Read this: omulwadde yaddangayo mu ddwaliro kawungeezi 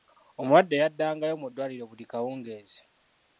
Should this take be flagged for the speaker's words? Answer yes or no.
yes